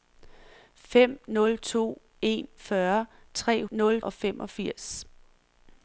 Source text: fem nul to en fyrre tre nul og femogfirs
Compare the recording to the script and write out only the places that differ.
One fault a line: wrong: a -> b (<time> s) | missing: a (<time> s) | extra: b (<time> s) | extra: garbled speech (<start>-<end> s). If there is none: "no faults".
no faults